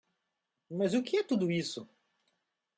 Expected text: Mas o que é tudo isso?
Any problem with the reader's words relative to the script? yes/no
no